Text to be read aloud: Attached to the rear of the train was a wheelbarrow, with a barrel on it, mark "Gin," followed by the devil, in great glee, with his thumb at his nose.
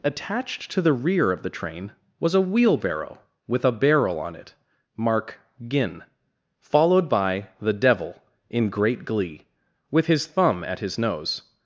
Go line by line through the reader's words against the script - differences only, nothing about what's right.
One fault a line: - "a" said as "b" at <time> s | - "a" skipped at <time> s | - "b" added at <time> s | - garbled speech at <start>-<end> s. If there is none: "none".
none